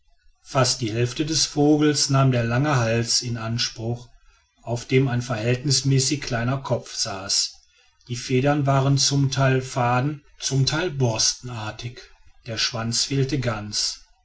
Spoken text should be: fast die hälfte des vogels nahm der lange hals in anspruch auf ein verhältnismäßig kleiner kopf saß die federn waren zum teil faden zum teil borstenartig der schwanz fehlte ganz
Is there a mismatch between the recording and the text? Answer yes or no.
yes